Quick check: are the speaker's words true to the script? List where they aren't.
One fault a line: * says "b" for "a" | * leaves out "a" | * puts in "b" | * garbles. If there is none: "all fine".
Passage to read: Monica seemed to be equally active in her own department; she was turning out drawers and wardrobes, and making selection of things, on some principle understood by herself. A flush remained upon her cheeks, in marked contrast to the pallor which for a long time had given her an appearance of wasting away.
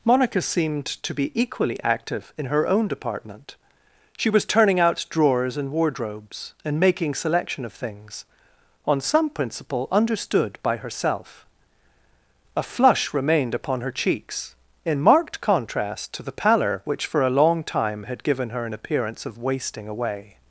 all fine